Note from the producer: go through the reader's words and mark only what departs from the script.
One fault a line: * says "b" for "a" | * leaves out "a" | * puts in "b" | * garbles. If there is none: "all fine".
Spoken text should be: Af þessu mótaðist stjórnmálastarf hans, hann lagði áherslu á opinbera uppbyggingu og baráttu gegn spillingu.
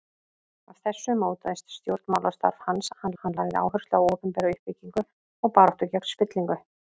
* puts in "hann"